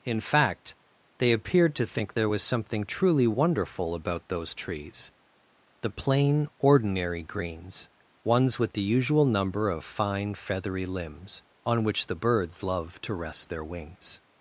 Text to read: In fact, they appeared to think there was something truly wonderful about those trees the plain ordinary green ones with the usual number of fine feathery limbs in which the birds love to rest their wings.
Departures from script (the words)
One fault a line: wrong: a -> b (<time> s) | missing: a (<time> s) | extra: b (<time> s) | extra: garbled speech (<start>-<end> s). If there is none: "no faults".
wrong: green -> greens (7.2 s)
wrong: in -> on (11.6 s)